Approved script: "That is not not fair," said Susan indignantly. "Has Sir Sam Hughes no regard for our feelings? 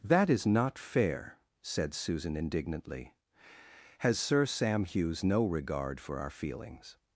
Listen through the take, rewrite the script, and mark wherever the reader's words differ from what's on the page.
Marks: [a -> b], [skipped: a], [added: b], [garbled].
"That is not [skipped: not] fair," said Susan indignantly. "Has Sir Sam Hughes no regard for our feelings?